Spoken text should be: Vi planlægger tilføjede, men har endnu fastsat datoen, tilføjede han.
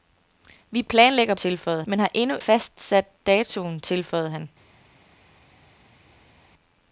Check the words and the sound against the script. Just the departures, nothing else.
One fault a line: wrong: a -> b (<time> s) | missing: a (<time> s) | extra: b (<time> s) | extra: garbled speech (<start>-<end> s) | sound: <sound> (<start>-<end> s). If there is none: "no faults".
no faults